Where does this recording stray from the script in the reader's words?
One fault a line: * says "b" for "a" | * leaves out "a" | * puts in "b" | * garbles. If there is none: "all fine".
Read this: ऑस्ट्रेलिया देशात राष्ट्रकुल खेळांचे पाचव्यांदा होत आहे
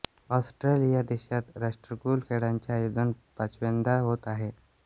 * puts in "आयोजन"